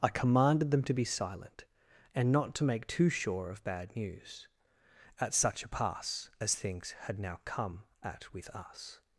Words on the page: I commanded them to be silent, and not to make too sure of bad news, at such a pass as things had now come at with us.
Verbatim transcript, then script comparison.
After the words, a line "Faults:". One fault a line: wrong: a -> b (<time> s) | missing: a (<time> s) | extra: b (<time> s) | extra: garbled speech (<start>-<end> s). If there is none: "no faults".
I commanded them to be silent, and not to make too sure of bad news, at such a pass as things had now come at with us.
Faults:
no faults